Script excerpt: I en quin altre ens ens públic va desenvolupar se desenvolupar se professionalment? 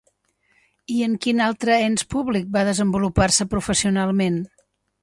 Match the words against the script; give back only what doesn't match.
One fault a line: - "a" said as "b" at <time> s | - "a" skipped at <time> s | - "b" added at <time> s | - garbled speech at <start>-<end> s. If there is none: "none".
- "ens" skipped at 2.1 s
- "desenvolupar se" skipped at 3.5 s